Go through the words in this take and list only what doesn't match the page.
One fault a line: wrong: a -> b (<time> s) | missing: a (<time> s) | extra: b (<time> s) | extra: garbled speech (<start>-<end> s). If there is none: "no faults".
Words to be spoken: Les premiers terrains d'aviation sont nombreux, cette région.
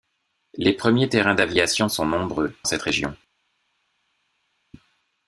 no faults